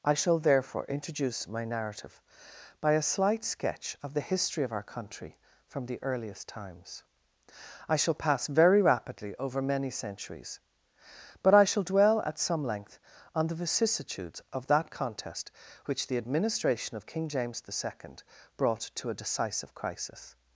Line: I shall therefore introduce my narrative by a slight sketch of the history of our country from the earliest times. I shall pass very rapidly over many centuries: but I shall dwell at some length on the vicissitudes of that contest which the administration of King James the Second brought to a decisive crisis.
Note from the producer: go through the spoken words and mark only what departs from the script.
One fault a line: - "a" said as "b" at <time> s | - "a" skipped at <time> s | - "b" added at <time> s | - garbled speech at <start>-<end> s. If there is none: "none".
none